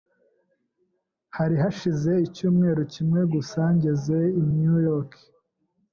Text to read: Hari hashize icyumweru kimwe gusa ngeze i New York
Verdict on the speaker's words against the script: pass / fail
pass